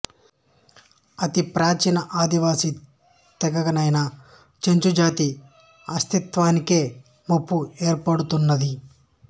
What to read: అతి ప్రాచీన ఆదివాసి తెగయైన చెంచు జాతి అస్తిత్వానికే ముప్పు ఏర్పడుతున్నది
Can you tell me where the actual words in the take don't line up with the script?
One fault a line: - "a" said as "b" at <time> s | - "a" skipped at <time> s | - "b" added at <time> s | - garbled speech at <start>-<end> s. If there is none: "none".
none